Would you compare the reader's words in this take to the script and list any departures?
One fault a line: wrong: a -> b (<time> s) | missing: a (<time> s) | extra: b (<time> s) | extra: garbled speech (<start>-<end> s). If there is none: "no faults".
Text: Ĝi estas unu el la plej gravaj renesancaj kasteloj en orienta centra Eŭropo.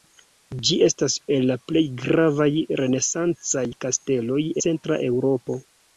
missing: unu (1.2 s)
missing: en orienta (4.4 s)